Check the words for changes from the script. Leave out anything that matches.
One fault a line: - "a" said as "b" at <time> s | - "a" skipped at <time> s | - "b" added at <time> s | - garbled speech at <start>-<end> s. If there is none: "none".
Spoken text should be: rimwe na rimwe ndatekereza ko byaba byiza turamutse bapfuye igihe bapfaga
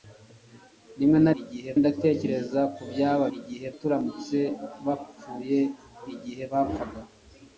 - "rimwe" said as "igihe" at 1.4 s
- "byiza" said as "igihe" at 3.4 s